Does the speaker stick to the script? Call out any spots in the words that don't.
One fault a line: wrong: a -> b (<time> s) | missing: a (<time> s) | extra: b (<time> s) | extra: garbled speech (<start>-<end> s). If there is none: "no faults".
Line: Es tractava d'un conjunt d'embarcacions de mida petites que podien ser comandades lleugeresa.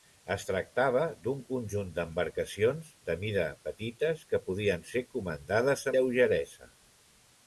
no faults